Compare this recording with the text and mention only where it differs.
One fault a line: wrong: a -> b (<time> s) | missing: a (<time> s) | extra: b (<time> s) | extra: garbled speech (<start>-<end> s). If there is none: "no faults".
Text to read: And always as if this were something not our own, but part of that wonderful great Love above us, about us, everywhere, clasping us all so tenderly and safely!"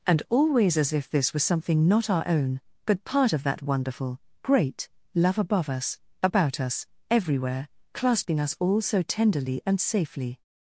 wrong: were -> was (1.3 s)